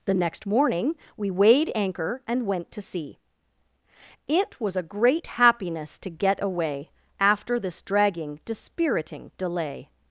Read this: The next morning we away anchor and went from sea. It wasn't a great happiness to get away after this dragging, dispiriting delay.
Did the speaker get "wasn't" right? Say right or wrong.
wrong